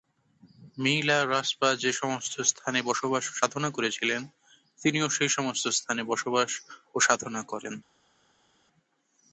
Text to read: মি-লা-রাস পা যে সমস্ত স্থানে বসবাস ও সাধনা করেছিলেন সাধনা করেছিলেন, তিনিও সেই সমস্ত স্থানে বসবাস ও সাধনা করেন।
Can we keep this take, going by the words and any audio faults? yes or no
no